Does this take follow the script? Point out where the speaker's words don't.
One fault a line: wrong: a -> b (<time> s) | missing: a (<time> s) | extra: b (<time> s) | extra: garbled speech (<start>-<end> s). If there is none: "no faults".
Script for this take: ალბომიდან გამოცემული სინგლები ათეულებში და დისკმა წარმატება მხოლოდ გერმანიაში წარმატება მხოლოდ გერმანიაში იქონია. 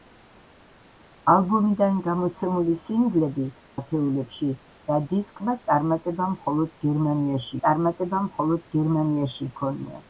no faults